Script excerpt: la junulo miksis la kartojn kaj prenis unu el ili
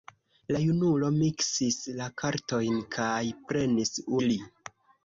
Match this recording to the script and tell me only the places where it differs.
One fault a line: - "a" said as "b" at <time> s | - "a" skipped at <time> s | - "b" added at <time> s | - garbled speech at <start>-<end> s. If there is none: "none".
- "unu el" skipped at 4.0 s